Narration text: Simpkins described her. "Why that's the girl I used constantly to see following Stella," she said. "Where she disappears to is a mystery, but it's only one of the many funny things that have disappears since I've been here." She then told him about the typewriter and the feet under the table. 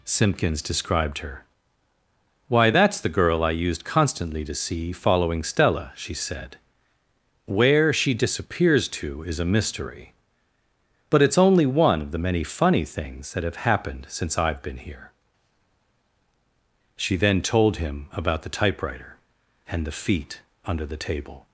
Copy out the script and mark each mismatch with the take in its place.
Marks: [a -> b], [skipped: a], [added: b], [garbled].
Simpkins described her. "Why that's the girl I used constantly to see following Stella," she said. "Where she disappears to is a mystery, but it's only one of the many funny things that have [disappears -> happened] since I've been here." She then told him about the typewriter and the feet under the table.